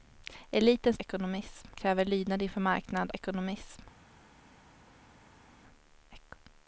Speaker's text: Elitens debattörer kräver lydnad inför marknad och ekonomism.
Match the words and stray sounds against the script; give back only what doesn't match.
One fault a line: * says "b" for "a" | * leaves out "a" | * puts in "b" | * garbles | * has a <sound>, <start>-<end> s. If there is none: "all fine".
* says "ekonomism" for "debattörer"
* leaves out "och"